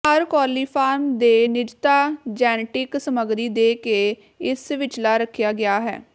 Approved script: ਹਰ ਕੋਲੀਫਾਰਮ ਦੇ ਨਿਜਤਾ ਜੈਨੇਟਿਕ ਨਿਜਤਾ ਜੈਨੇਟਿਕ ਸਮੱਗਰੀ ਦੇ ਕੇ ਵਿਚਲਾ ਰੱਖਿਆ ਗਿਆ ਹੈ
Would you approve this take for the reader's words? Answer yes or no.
no